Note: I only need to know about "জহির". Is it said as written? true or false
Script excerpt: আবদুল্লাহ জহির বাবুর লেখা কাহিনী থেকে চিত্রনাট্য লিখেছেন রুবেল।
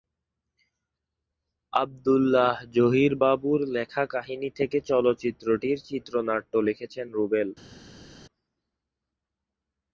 true